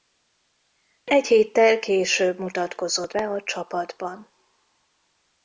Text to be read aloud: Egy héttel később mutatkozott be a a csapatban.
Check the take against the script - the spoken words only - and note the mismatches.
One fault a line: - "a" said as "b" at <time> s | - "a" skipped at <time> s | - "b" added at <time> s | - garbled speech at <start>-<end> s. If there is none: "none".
- "a" skipped at 3.4 s